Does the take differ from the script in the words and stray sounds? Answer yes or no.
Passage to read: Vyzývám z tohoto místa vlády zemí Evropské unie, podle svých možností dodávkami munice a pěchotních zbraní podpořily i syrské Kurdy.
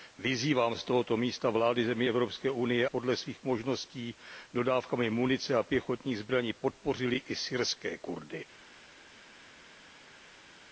no